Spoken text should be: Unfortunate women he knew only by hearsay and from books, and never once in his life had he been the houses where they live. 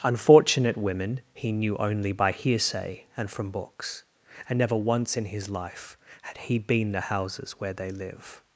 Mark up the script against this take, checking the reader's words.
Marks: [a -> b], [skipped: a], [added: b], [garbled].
Unfortunate women he knew only by hearsay and from books, and never once in his life had he been the houses where they live.